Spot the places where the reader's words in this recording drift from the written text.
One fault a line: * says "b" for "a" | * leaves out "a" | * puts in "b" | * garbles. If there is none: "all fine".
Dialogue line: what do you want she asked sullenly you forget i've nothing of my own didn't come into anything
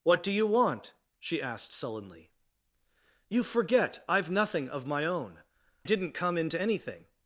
all fine